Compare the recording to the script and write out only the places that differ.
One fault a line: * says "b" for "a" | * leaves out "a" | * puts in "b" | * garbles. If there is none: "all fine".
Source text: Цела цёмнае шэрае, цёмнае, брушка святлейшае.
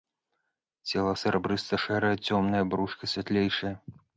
* says "серабрыста" for "цёмнае"